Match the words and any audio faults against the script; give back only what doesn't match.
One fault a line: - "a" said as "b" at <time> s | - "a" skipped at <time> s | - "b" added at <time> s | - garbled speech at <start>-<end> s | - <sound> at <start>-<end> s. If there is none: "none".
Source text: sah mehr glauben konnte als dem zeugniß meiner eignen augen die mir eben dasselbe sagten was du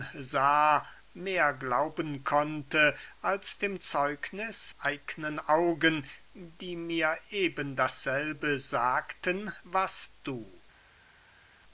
- "meiner" skipped at 4.7 s